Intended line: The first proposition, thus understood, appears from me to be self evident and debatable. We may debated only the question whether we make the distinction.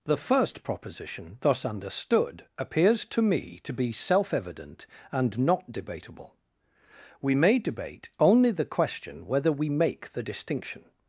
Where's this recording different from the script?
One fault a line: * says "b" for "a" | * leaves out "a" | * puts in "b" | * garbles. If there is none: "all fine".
* says "to" for "from"
* puts in "not"
* says "debate" for "debated"